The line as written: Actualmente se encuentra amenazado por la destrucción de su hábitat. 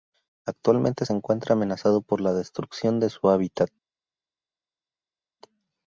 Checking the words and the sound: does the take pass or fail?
pass